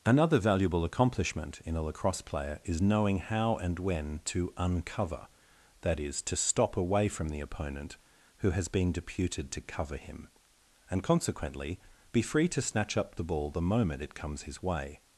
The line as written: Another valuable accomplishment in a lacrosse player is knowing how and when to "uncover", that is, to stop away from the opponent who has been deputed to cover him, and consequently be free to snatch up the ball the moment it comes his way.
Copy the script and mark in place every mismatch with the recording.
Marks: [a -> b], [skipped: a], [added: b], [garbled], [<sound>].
Another valuable accomplishment in a lacrosse player is knowing how and when to "uncover", that is, to stop away from the opponent who has been deputed to cover him, and consequently be free to snatch up the ball the moment it comes his way.